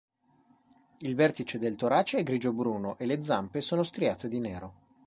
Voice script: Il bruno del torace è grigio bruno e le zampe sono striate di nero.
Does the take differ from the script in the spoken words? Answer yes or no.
yes